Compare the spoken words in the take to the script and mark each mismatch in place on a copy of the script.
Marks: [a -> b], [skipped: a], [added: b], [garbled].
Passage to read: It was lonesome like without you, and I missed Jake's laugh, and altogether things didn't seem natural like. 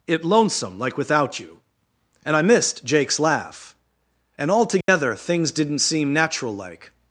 It [skipped: was] lonesome like without you, and I missed Jake's laugh, and altogether things didn't seem natural like.